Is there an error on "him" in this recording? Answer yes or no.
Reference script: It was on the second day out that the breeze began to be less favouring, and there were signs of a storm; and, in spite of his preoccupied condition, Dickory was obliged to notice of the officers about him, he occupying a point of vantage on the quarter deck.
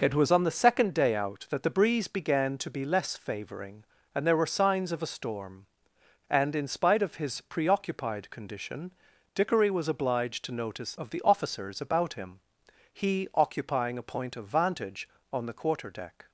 no